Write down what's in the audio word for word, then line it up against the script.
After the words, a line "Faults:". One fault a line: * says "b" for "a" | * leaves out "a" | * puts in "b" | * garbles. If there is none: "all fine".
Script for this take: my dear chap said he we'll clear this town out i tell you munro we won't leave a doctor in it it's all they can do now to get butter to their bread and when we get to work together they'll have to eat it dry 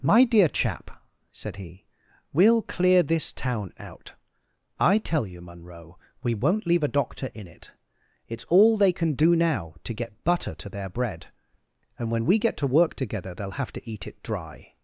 my dear chap said he we'll clear this town out i tell you munro we won't leave a doctor in it it's all they can do now to get butter to their bread and when we get to work together they'll have to eat it dry
Faults:
all fine